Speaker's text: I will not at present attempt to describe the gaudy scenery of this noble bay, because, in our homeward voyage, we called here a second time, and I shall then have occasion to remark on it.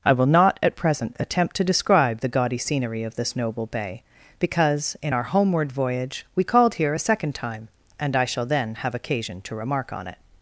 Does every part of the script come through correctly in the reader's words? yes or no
yes